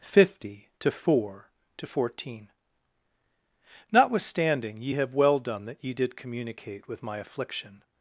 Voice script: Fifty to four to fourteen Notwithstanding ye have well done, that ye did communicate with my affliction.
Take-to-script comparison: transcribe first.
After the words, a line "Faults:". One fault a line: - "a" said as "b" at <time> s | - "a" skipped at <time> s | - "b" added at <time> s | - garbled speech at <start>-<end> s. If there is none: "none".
Fifty to four to fourteen Notwithstanding ye have well done, that ye did communicate with my affliction.
Faults:
none